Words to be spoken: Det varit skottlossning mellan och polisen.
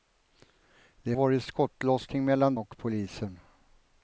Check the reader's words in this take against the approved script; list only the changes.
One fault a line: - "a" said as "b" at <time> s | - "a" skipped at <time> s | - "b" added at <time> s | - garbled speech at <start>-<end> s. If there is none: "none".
none